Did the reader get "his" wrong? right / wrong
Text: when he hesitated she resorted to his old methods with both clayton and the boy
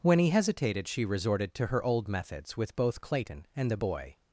wrong